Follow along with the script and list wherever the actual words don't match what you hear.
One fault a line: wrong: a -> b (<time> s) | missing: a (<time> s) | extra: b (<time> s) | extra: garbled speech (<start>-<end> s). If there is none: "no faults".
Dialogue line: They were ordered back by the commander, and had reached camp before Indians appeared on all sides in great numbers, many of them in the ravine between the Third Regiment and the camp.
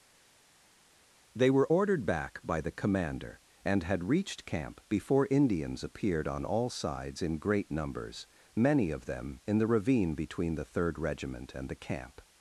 no faults